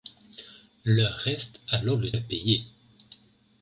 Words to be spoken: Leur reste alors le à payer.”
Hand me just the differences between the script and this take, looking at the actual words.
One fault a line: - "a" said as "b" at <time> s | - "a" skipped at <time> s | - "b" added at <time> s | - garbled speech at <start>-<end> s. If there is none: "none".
none